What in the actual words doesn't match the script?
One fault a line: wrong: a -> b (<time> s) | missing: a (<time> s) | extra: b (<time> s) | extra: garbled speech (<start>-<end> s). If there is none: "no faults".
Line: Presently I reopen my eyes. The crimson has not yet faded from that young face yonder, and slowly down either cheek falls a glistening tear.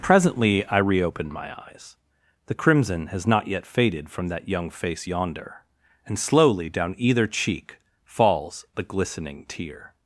wrong: a -> the (8.7 s)